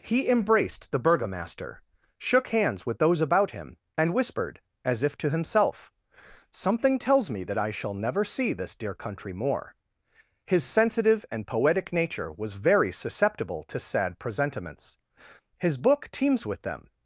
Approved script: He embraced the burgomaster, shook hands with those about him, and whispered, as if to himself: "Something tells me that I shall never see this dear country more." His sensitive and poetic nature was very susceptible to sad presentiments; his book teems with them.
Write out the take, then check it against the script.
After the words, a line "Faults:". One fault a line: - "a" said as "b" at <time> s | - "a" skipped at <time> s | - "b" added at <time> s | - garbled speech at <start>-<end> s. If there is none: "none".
He embraced the burgomaster, shook hands with those about him, and whispered, as if to himself: "Something tells me that I shall never see this dear country more." His sensitive and poetic nature was very susceptible to sad presentiments; his book teems with them.
Faults:
none